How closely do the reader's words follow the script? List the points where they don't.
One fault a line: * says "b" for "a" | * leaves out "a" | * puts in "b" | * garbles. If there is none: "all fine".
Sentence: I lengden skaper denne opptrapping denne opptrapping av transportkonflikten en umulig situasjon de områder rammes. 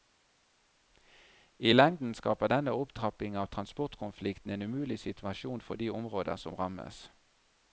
* leaves out "denne opptrapping"
* puts in "for"
* puts in "som"